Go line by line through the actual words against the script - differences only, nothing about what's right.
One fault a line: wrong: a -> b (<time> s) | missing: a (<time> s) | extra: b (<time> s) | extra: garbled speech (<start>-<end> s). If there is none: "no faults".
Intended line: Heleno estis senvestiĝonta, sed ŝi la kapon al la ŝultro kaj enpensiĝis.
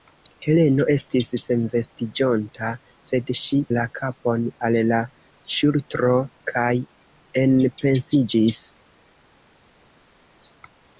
no faults